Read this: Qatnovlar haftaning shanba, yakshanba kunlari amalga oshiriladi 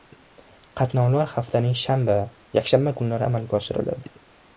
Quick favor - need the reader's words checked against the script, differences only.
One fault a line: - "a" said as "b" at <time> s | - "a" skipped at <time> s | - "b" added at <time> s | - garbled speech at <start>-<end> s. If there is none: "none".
none